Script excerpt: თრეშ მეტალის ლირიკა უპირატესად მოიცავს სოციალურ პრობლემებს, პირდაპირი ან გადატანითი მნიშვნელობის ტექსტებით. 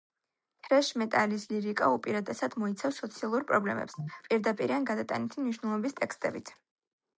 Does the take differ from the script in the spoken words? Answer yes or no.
no